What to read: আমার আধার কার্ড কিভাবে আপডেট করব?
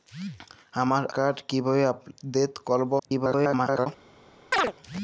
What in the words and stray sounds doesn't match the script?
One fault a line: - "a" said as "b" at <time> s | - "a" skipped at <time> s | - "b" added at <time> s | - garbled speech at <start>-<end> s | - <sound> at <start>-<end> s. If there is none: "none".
- "আধার" skipped at 1.0 s
- garbled speech at 3.0-3.9 s
- chirp at 4.5-4.7 s